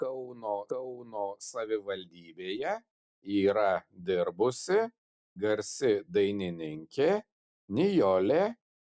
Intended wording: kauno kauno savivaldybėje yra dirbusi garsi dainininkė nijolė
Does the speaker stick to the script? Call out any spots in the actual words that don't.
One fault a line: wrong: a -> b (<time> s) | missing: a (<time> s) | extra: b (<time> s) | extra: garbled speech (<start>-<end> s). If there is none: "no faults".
no faults